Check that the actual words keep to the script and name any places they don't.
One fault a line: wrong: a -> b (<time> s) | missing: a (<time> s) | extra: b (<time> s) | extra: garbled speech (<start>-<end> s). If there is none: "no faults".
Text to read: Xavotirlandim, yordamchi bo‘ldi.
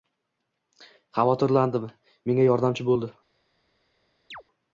extra: menga (2.3 s)